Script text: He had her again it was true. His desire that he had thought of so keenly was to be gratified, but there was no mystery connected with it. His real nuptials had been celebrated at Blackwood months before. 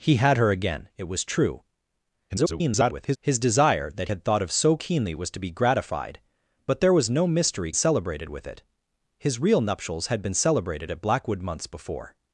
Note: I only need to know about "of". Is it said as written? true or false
true